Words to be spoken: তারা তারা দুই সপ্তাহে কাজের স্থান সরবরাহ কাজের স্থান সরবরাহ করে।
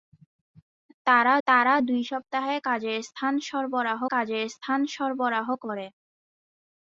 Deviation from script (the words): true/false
false